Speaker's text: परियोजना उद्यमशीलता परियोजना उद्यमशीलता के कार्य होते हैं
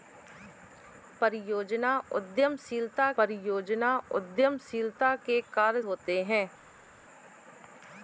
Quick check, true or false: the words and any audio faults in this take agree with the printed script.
true